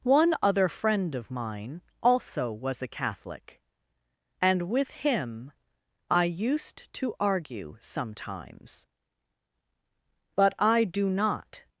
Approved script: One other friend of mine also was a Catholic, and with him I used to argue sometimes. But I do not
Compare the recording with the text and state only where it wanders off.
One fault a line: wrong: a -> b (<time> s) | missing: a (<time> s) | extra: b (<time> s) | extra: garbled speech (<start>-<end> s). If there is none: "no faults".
no faults